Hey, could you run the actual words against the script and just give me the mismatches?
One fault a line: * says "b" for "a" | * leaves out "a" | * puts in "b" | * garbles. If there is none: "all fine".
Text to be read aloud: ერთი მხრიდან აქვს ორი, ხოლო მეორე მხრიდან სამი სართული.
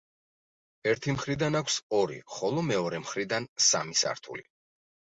all fine